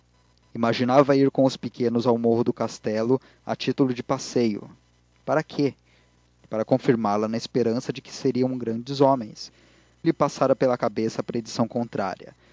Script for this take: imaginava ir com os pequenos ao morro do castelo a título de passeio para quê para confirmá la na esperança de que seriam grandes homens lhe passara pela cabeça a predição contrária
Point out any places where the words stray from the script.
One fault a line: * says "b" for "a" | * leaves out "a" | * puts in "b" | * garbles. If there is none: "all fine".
all fine